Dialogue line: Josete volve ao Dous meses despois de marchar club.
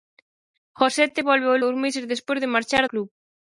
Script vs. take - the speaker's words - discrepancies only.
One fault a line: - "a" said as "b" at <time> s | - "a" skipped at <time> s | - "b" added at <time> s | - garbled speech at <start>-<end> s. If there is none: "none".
none